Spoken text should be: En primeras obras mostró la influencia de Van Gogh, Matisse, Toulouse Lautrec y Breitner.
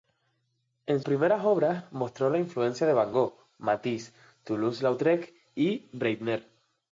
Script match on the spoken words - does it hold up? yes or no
yes